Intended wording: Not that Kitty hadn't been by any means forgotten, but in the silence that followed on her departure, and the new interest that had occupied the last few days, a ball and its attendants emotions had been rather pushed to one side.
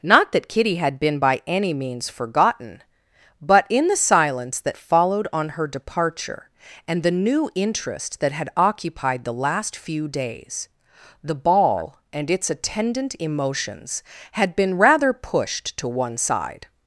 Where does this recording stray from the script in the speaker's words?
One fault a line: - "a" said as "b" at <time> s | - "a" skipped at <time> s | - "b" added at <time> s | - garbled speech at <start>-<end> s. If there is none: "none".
- "hadn't" said as "had" at 0.8 s
- "a" said as "the" at 11.2 s
- "attendants" said as "attendant" at 12.5 s